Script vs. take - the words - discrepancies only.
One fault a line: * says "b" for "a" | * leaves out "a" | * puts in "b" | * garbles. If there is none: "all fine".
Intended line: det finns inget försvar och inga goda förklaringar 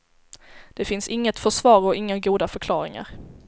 all fine